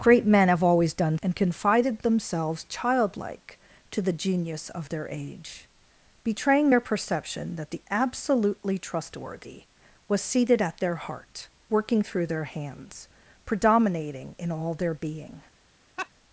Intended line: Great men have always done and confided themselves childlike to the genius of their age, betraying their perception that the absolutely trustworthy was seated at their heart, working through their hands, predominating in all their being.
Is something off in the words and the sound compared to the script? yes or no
yes